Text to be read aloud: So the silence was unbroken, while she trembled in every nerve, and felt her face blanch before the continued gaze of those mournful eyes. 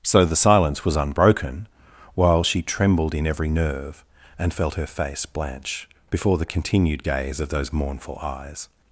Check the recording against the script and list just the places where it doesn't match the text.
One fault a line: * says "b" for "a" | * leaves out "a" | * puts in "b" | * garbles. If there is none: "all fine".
all fine